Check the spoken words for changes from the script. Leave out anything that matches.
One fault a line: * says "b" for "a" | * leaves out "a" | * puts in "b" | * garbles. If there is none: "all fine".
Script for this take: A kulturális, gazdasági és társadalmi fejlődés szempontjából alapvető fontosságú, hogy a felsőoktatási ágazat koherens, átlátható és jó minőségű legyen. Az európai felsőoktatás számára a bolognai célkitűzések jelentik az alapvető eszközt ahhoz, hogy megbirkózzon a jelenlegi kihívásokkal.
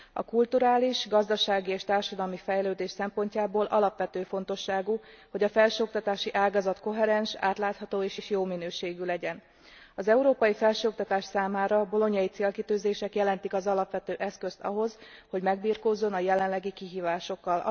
* puts in "és"